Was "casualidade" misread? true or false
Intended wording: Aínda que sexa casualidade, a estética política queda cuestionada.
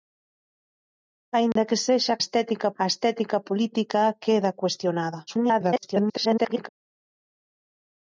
true